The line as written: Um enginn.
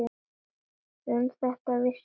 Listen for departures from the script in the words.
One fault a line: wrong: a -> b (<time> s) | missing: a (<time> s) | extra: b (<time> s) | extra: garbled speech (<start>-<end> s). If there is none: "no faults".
extra: þetta vissi (1.4 s)